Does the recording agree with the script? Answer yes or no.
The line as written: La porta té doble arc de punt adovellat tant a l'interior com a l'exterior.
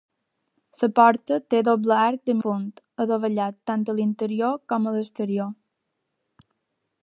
yes